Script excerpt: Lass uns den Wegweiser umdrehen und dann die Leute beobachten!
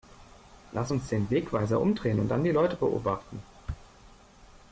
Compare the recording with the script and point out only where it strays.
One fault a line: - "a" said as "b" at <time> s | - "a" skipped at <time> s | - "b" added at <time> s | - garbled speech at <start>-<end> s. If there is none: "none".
none